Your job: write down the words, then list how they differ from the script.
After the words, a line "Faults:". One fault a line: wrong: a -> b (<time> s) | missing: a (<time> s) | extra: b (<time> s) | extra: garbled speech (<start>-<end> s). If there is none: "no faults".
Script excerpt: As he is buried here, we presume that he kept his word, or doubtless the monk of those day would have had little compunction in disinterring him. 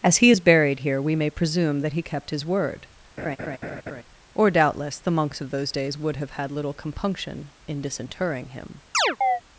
As he is buried here, we may presume that he kept his word, or doubtless the monks of those days would have had little compunction in disinterring him.
Faults:
extra: may (1.1 s)
wrong: monk -> monks (5.1 s)
wrong: day -> days (5.7 s)